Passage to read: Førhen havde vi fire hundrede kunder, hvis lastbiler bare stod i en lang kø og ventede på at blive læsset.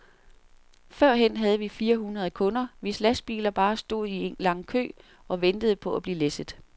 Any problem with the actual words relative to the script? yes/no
no